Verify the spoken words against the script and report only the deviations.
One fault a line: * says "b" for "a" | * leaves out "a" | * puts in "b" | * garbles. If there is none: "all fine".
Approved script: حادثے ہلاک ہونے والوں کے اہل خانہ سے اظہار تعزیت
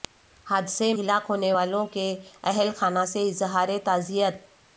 all fine